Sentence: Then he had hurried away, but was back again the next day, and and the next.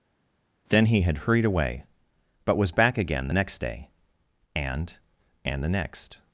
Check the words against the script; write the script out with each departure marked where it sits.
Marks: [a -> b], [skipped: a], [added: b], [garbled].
Then he had hurried away, but was back again the next day, and and the next.